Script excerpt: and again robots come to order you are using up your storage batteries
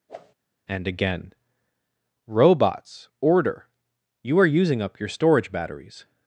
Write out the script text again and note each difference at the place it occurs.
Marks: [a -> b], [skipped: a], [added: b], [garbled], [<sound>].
[whoosh] and again robots [skipped: come to] order you are using up your storage batteries